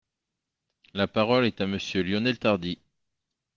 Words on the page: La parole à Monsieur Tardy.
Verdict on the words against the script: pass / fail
fail